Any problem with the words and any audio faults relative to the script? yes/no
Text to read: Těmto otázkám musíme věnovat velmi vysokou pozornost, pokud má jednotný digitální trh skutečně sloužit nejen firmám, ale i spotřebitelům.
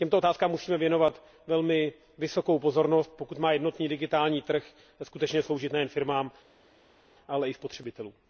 no